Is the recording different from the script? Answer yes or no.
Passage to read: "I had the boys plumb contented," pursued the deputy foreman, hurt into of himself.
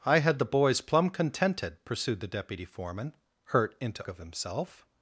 no